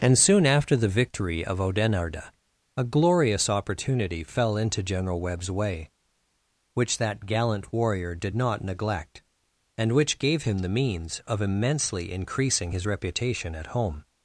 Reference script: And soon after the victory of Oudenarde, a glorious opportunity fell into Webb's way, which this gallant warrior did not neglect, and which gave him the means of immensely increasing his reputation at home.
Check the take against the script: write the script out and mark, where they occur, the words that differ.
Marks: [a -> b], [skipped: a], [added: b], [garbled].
And soon after the victory of Oudenarde, a glorious opportunity fell into [added: General] Webb's way, which [this -> that] gallant warrior did not neglect, and which gave him the means of immensely increasing his reputation at home.